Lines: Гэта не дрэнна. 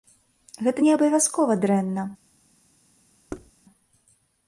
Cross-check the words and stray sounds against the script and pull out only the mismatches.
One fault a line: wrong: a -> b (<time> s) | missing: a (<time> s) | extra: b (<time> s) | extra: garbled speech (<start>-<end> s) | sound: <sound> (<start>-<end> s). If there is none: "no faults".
extra: абавязкова (0.9 s)
sound: thud (3.3-3.5 s)